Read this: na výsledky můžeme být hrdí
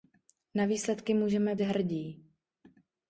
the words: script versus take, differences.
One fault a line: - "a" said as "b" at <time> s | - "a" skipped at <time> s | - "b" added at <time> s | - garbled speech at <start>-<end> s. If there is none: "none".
- "být" skipped at 1.6 s